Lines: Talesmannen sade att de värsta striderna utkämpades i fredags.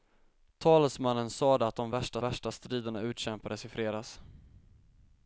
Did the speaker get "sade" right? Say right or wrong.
right